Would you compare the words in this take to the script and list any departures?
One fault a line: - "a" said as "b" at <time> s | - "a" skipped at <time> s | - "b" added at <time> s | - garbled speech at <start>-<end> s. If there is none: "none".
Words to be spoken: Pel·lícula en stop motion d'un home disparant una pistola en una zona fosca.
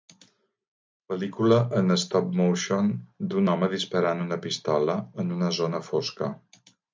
none